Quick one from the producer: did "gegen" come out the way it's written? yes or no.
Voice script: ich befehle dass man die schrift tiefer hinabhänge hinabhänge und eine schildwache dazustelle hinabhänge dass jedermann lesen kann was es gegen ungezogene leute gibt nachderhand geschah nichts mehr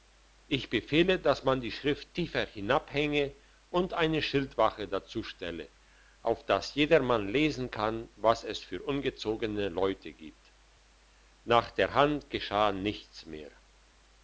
no